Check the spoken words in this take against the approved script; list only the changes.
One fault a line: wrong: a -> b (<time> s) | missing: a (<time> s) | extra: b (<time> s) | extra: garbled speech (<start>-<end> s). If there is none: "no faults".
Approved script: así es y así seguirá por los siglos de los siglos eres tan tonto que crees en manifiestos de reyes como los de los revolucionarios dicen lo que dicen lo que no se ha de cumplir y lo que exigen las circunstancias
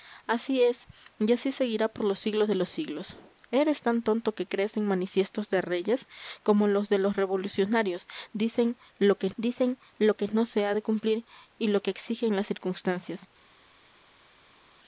no faults